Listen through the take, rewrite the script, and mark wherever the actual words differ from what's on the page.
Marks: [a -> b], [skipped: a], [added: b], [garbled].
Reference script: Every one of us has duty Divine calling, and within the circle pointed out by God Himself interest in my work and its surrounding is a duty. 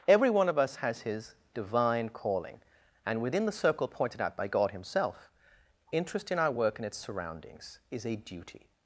Every one of us has [duty -> his] Divine calling, and within the circle pointed out by God Himself interest in [my -> our] work and its [surrounding -> surroundings] is a duty.